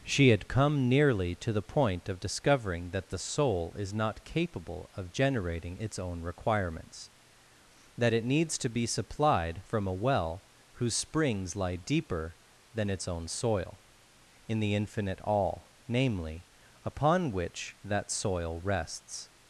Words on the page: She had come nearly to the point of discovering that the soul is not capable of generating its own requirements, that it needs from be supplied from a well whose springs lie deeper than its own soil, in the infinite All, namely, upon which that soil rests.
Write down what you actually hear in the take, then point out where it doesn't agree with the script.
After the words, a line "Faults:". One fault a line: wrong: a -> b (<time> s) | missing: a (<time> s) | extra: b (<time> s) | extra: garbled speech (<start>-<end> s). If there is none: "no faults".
She had come nearly to the point of discovering that the soul is not capable of generating its own requirements, that it needs to be supplied from a well whose springs lie deeper than its own soil, in the infinite All, namely, upon which that soil rests.
Faults:
wrong: from -> to (8.6 s)